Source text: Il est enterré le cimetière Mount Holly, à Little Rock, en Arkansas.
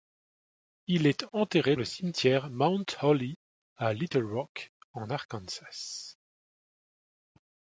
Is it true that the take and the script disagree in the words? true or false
false